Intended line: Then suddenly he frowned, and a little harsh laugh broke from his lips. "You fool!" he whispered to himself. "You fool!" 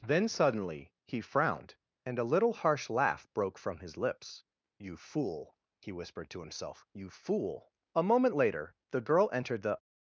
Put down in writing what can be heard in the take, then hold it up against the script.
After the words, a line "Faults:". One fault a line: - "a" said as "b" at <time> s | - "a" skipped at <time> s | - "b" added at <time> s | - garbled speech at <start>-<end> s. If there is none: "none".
Then suddenly he frowned, and a little harsh laugh broke from his lips. "You fool!" he whispered to himself. "You fool!" A moment later the girl entered the
Faults:
- "A moment later the girl entered the" added at 8.0 s